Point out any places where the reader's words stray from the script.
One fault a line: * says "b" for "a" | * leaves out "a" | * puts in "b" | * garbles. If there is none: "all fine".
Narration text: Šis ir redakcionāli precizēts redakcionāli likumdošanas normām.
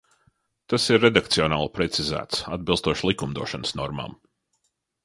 * says "Tas" for "Šis"
* says "atbilstoši" for "redakcionāli"